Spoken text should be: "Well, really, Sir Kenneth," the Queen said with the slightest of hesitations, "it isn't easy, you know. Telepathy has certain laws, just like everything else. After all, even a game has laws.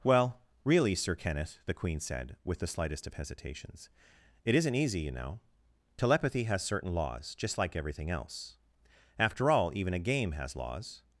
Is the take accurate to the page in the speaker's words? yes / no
yes